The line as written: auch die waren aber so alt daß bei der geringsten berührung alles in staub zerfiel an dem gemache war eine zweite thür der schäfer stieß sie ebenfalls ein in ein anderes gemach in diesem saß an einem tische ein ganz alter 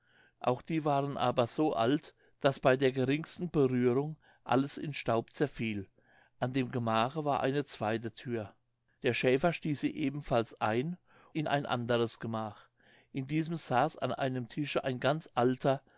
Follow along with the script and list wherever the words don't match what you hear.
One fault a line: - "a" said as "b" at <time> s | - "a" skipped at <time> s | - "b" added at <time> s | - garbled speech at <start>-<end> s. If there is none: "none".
none